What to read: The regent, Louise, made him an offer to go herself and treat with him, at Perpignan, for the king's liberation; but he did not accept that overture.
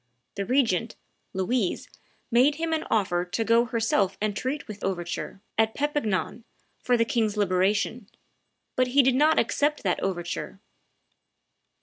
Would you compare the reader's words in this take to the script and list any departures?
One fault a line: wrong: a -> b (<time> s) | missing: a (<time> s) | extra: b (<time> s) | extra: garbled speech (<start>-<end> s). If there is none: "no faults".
wrong: him -> overture (4.8 s)